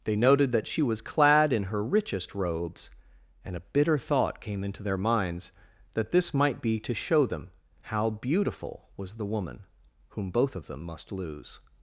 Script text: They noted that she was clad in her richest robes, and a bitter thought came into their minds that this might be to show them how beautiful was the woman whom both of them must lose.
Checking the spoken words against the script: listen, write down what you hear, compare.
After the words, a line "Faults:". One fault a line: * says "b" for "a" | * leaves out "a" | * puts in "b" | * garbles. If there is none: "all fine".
They noted that she was clad in her richest robes, and a bitter thought came into their minds that this might be to show them how beautiful was the woman whom both of them must lose.
Faults:
all fine